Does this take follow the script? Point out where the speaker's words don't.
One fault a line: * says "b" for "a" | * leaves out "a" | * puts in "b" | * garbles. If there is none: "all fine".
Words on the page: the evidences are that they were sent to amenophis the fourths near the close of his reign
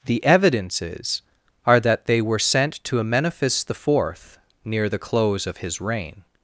* says "fourth" for "fourths"